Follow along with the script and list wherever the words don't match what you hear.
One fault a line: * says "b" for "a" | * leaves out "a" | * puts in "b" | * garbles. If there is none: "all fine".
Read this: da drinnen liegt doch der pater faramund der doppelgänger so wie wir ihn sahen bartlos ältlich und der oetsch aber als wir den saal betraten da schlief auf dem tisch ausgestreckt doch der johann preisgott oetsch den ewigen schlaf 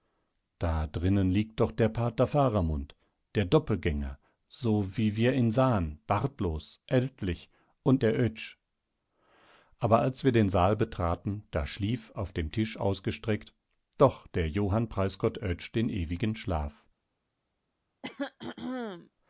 all fine